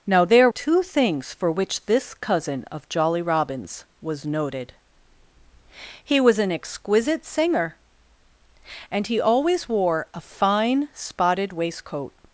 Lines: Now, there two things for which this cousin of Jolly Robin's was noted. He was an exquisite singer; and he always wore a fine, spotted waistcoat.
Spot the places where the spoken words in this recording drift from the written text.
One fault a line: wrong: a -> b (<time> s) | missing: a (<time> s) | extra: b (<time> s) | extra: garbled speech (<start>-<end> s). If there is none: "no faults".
no faults